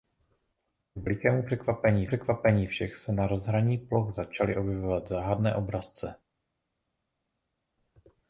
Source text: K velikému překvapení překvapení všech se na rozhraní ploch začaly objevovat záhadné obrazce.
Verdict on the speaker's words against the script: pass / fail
pass